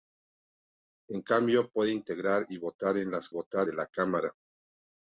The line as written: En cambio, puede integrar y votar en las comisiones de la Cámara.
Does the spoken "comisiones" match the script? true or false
false